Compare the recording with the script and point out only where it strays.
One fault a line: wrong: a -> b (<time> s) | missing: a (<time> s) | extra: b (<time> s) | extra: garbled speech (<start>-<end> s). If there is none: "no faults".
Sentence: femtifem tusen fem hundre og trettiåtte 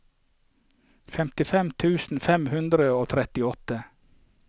no faults